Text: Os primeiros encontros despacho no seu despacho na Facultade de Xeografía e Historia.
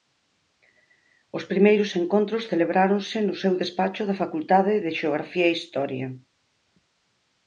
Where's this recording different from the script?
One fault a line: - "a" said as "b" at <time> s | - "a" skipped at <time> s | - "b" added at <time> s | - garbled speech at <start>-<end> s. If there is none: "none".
- "despacho" said as "celebráronse" at 2.5 s
- "na" said as "da" at 4.0 s